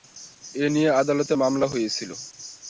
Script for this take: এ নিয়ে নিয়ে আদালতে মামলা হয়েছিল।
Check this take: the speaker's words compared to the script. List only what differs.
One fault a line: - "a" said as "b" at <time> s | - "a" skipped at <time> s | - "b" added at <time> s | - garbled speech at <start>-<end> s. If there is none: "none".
- "নিয়ে" skipped at 0.9 s